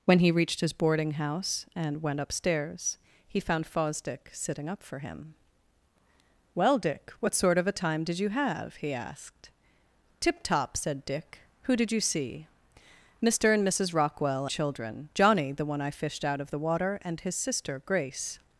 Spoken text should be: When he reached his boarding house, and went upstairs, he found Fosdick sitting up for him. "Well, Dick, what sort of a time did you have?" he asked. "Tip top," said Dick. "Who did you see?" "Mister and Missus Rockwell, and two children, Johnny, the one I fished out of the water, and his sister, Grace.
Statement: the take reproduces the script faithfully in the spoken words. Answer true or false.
false